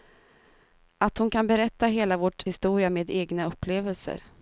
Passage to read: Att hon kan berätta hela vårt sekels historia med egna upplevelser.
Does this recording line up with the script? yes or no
no